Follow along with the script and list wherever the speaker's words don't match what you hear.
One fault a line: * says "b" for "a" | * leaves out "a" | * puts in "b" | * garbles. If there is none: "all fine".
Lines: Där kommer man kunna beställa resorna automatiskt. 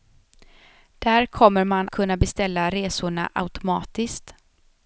all fine